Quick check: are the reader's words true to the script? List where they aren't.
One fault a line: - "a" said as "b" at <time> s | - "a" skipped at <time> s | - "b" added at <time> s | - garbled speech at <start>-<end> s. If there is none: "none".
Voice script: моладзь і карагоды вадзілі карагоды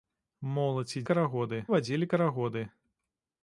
none